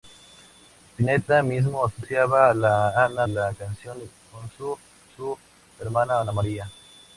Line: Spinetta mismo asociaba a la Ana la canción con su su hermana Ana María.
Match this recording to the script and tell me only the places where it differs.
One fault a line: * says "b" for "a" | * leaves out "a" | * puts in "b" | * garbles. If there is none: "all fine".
all fine